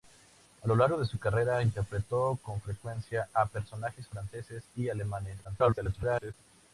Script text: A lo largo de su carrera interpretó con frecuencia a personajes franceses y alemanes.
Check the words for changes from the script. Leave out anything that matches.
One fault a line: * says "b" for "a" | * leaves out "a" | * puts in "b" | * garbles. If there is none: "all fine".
* garbles